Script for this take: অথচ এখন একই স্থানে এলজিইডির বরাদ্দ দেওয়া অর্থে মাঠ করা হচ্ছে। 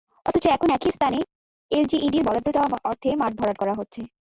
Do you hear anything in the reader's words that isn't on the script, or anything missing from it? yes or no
yes